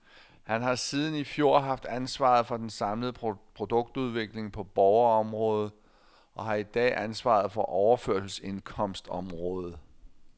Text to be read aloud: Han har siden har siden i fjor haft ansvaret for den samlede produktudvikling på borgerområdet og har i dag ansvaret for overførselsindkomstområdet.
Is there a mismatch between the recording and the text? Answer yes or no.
yes